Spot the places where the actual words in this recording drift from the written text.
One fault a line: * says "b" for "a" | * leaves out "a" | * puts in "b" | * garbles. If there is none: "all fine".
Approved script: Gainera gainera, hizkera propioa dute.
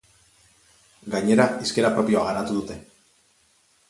* leaves out "gainera"
* puts in "garatu"